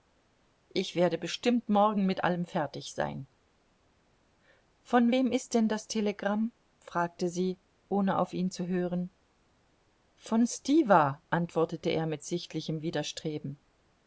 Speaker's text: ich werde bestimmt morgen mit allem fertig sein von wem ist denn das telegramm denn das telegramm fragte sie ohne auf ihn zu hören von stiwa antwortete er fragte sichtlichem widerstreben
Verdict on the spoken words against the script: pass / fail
fail